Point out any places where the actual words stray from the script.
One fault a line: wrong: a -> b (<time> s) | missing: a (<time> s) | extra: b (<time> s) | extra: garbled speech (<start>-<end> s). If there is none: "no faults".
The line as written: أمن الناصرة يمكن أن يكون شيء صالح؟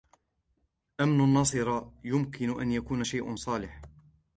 no faults